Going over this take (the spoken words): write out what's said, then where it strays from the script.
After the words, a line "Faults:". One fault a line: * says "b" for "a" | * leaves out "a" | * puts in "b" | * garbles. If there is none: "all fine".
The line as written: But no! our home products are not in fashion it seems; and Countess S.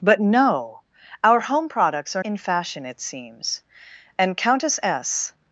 But no! our home products are in fashion it seems; and Countess S.
Faults:
* leaves out "not"